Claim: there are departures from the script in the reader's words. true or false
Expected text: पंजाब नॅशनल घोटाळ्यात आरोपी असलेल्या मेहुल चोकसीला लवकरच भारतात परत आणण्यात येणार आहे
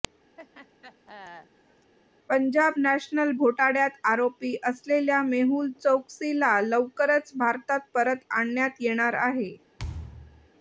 false